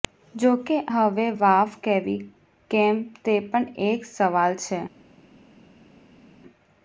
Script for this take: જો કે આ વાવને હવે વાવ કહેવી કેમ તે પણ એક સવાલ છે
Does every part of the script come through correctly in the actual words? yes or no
no